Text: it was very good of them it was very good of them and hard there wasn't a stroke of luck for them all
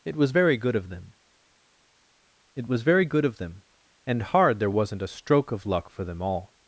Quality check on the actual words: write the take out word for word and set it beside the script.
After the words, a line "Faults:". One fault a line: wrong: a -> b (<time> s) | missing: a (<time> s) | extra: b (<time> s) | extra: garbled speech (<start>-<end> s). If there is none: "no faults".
it was very good of them it was very good of them and hard there wasn't a stroke of luck for them all
Faults:
no faults